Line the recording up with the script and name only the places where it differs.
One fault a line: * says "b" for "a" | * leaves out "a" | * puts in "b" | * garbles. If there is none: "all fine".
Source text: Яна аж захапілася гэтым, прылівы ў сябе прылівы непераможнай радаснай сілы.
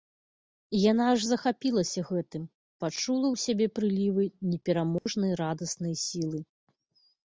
* says "пачула" for "прылівы"